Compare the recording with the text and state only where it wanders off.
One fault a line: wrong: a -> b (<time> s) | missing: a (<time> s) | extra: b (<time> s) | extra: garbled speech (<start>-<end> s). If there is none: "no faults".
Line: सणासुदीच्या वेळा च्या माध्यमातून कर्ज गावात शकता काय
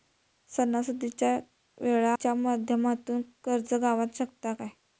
no faults